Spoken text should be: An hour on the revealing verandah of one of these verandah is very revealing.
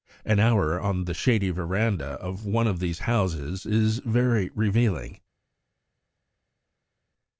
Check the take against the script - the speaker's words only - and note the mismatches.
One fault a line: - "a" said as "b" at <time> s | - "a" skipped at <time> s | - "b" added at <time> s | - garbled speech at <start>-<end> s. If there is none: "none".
- "revealing" said as "shady" at 1.1 s
- "verandah" said as "houses" at 3.0 s